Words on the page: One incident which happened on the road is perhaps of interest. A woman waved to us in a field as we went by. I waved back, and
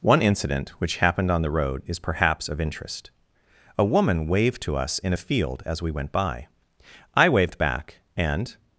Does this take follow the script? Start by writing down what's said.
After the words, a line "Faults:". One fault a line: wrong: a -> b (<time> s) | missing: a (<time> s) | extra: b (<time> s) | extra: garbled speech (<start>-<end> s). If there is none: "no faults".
One incident which happened on the road is perhaps of interest. A woman waved to us in a field as we went by. I waved back, and
Faults:
no faults